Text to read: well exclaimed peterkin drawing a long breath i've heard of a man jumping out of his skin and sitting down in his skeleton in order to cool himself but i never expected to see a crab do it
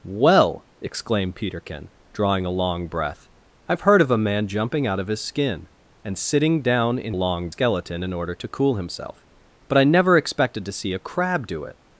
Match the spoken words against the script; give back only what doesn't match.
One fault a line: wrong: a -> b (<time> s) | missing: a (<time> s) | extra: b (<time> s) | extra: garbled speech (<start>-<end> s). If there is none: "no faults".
wrong: his -> long (7.1 s)